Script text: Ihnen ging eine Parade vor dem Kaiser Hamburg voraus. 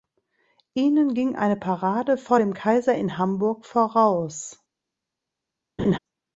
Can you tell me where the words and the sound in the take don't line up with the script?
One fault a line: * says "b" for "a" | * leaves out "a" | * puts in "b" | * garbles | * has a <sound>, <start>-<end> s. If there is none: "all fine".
* puts in "in"
* has a laugh, 5.8-6.0 s